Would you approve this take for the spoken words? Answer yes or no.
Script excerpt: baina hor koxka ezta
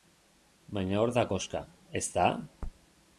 no